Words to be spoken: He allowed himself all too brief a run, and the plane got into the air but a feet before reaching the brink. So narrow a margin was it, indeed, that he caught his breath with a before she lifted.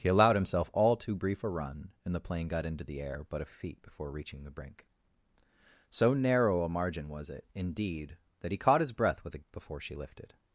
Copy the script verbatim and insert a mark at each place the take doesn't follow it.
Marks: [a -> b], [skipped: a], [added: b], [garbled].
He allowed himself all too brief a run, and the plane got into the air but a feet before reaching the brink. So narrow a margin was it, indeed, that he caught his breath with a before she lifted.